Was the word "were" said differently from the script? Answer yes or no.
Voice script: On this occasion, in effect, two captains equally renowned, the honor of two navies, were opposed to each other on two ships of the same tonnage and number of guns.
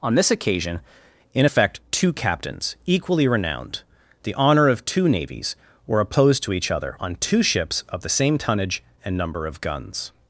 no